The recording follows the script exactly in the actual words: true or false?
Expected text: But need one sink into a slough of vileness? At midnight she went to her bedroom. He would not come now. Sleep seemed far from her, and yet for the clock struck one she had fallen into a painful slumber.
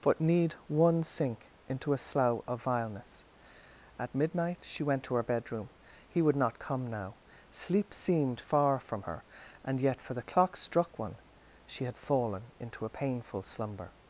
true